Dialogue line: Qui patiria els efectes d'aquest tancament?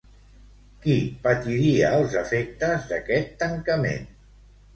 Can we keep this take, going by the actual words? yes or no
yes